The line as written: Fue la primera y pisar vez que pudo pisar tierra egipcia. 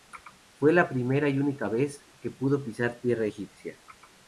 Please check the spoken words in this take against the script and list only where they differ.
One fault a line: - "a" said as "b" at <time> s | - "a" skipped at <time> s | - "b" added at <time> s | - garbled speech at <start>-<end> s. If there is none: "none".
- "pisar" said as "única" at 1.4 s